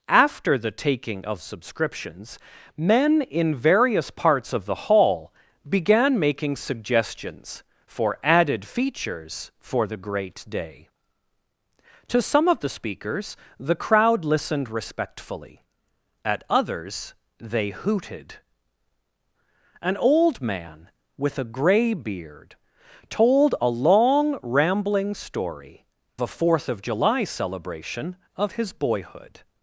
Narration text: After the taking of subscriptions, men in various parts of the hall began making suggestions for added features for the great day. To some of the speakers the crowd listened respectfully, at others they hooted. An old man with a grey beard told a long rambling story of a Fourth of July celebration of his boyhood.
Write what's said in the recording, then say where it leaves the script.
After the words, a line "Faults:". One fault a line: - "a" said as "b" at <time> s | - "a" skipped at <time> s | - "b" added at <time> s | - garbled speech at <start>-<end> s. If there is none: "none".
After the taking of subscriptions, men in various parts of the hall began making suggestions for added features for the great day. To some of the speakers the crowd listened respectfully, at others they hooted. An old man with a grey beard told a long rambling story a Fourth of July celebration of his boyhood.
Faults:
- "of" skipped at 25.9 s